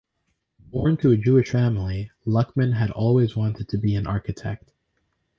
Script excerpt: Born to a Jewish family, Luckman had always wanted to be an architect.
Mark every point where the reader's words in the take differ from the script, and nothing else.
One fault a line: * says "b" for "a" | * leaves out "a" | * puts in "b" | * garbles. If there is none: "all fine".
all fine